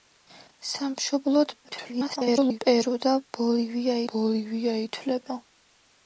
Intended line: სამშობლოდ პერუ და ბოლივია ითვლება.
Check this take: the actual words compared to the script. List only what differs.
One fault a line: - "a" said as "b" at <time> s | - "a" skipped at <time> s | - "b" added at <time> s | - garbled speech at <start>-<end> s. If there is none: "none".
- garbled speech at 1.6-2.6 s
- "ბოლივია" added at 4.2 s